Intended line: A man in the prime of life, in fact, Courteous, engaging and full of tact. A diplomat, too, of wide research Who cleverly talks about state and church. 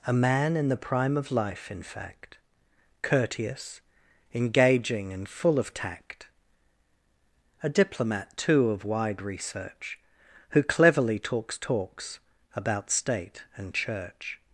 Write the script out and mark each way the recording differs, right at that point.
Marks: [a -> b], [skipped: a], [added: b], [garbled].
A man in the prime of life, in fact, Courteous, engaging and full of tact. A diplomat, too, of wide research Who cleverly talks [added: talks] about state and church.